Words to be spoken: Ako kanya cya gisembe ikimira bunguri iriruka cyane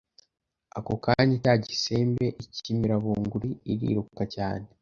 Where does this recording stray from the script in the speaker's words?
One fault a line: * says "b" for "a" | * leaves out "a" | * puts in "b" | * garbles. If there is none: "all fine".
all fine